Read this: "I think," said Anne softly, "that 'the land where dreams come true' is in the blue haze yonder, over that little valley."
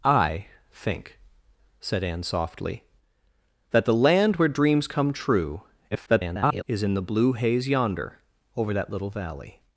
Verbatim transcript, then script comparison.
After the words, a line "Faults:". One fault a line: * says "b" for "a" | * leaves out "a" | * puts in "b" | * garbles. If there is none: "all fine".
"I think," said Anne softly, "that 'the land where dreams come true' [garbled] is in the blue haze yonder, over that little valley."
Faults:
* garbles